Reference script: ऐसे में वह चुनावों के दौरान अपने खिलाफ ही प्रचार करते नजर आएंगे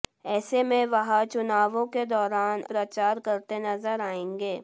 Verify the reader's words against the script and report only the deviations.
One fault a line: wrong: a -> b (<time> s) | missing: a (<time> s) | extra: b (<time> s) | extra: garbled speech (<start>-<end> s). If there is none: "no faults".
missing: अपने खिलाफ ही (2.6 s)